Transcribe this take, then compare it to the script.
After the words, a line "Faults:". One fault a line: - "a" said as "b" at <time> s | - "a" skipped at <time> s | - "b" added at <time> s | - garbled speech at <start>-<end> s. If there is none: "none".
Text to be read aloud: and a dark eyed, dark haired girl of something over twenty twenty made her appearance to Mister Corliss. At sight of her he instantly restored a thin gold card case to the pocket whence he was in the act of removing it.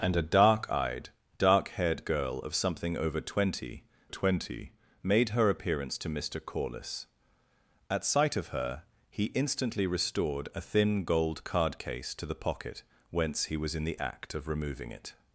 and a dark eyed, dark haired girl of something over twenty twenty made her appearance to Mister Corliss. At sight of her he instantly restored a thin gold card case to the pocket whence he was in the act of removing it.
Faults:
none